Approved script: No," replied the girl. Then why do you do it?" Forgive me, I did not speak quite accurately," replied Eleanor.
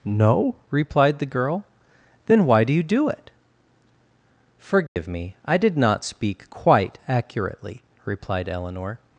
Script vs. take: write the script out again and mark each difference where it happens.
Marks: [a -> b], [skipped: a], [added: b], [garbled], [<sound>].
No," replied the girl. Then why do you do it?" Forgive [dropout] me, I did not speak quite accurately," replied Eleanor.